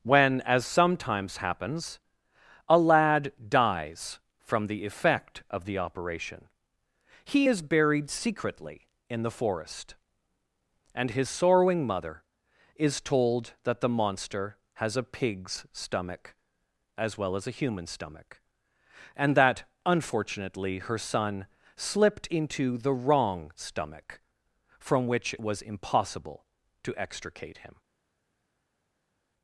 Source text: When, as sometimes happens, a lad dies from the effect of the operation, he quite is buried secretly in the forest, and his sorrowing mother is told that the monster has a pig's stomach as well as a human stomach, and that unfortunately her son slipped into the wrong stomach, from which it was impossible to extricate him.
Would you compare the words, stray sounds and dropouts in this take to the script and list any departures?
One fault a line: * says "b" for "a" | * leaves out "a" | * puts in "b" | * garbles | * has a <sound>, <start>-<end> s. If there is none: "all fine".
* leaves out "quite"